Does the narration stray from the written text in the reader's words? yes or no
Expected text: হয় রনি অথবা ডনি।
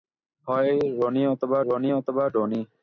yes